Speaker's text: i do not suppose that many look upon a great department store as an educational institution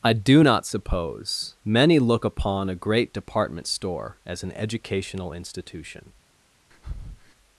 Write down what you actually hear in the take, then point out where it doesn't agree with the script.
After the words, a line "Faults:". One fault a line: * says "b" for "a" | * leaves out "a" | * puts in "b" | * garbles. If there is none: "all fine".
i do not suppose many look upon a great department store as an educational institution
Faults:
* leaves out "that"